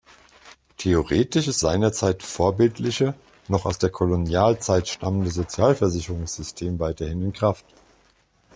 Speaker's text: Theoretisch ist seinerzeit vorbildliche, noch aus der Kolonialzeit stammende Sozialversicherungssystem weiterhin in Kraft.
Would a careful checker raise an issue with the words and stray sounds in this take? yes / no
no